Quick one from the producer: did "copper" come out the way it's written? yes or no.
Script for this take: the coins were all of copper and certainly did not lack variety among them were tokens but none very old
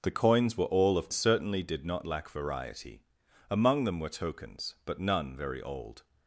no